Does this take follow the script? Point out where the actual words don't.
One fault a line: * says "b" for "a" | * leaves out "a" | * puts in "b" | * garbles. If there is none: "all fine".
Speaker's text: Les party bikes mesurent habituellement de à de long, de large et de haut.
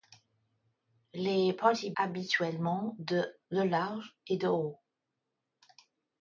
* leaves out "bikes mesurent"
* leaves out "à de long"